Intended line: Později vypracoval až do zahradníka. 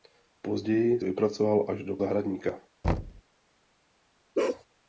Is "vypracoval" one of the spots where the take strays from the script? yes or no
no